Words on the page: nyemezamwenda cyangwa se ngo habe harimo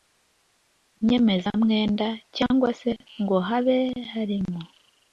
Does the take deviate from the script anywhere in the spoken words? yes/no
no